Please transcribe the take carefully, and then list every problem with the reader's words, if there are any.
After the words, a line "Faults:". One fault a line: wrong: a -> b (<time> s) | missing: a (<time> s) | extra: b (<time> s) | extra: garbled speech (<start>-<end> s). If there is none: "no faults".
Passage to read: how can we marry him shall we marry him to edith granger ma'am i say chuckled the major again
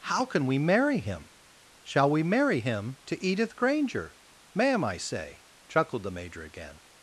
how can we marry him shall we marry him to edith granger ma'am i say chuckled the major again
Faults:
no faults